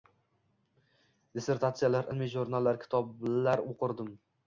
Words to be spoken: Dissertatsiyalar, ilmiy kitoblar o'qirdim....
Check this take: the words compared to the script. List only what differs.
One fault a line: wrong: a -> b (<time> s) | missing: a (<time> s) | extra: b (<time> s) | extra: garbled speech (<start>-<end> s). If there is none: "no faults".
extra: jurnallar (2.4 s)